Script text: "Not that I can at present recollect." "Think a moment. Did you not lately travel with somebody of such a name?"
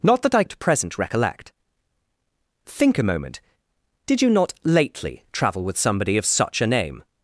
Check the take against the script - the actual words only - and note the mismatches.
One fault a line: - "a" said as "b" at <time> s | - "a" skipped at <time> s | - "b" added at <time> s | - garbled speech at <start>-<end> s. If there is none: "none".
- "can" skipped at 0.4 s